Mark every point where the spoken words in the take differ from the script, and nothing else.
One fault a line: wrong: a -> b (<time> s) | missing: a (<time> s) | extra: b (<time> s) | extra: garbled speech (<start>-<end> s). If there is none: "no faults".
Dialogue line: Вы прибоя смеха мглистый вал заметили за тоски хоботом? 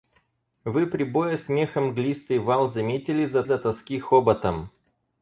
extra: за (3.4 s)